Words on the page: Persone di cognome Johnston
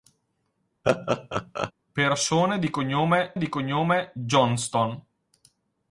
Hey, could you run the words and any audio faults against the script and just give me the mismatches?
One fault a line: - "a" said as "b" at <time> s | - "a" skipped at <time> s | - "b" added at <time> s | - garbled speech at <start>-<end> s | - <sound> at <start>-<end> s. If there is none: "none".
- laugh at 0.8-1.7 s
- "di cognome" added at 3.4 s